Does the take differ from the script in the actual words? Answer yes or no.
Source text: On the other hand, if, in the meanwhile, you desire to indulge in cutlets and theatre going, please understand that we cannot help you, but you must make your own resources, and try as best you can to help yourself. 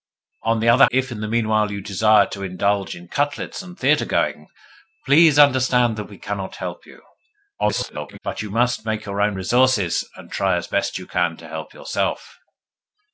yes